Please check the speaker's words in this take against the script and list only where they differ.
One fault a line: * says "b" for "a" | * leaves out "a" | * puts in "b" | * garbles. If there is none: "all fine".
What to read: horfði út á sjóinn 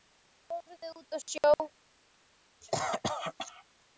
all fine